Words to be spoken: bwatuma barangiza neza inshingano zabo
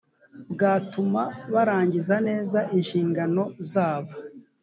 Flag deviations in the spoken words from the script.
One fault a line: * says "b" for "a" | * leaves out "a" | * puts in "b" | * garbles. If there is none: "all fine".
all fine